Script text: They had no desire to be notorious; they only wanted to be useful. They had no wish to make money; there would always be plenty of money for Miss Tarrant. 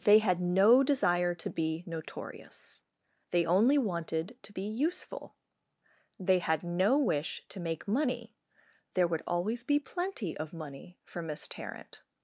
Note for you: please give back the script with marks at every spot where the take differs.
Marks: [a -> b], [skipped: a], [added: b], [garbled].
They had no desire to be notorious; they only wanted to be useful. They had no wish to make money; there would always be plenty of money for Miss Tarrant.